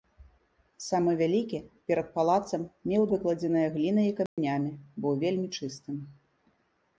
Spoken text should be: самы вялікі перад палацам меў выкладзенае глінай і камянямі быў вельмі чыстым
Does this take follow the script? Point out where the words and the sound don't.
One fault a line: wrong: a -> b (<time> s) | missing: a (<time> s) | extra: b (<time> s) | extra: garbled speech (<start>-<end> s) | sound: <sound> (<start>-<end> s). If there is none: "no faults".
sound: dropout (4.3-4.4 s)